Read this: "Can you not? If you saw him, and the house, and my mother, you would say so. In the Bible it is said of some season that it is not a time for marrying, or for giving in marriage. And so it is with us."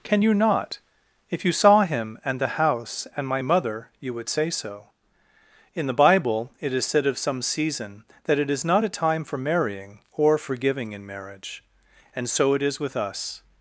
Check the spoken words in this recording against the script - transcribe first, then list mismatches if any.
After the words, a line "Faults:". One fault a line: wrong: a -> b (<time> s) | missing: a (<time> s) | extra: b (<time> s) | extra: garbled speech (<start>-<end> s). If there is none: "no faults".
"Can you not? If you saw him, and the house, and my mother, you would say so. In the Bible it is said of some season that it is not a time for marrying, or for giving in marriage. And so it is with us."
Faults:
no faults